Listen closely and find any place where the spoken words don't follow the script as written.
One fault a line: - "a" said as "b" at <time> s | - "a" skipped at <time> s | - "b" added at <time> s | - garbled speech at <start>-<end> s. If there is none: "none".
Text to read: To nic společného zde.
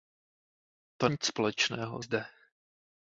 none